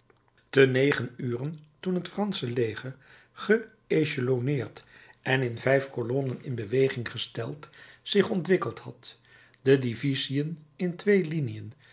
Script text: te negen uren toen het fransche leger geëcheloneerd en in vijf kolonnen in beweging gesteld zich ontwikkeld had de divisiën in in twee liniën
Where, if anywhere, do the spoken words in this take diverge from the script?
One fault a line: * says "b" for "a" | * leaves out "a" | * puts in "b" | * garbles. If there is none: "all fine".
* leaves out "in"